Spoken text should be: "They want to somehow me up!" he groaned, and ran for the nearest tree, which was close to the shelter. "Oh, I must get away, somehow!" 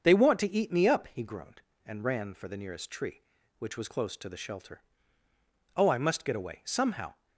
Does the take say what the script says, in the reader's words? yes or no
no